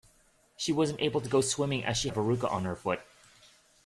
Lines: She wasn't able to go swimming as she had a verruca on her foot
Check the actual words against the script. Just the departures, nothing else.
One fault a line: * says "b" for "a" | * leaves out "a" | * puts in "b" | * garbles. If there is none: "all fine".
* leaves out "had"